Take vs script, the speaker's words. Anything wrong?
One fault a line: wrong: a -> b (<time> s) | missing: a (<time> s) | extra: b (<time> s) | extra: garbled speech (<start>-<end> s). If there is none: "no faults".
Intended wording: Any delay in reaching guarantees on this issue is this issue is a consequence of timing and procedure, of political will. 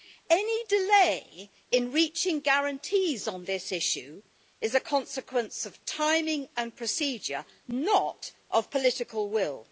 missing: this issue is (4.7 s)
extra: not (7.7 s)